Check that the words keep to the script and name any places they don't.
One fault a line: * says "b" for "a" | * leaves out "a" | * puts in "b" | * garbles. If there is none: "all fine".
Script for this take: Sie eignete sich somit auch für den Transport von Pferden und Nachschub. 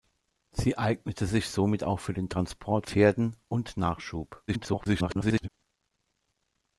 * leaves out "von"
* garbles